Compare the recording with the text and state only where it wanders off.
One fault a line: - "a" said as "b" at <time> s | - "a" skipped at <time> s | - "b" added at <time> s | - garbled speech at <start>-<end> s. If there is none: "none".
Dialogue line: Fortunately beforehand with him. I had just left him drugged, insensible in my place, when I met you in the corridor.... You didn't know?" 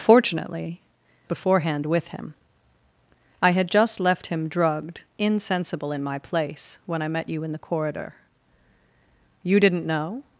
none